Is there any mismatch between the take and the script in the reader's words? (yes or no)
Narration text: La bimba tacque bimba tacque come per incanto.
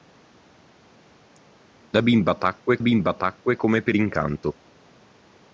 no